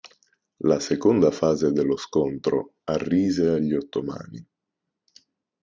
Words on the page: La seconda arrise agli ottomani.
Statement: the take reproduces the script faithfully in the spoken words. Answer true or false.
false